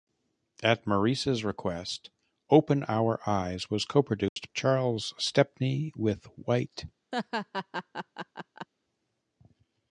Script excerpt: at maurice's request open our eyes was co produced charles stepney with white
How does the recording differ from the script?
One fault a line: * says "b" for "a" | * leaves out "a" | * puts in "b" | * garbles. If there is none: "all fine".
all fine